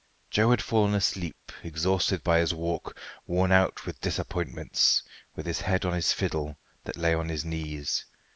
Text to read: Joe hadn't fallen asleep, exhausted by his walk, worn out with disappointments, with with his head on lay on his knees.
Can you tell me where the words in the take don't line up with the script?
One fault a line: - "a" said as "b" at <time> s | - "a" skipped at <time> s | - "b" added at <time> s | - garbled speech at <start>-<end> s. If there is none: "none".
- "hadn't" said as "had" at 0.5 s
- "with" skipped at 5.5 s
- "his fiddle that" added at 5.9 s